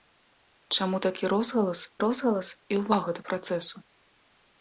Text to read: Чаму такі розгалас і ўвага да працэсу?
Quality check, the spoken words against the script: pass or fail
fail